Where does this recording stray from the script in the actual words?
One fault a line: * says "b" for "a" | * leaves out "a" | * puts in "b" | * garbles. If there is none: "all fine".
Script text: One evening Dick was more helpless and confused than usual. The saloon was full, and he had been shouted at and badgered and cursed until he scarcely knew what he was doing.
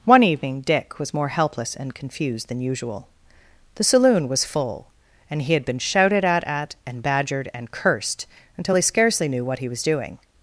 * puts in "at"